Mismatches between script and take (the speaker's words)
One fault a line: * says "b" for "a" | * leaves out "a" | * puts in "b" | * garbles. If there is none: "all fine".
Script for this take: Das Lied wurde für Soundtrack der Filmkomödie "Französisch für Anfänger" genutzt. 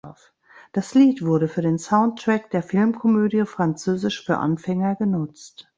* puts in "den"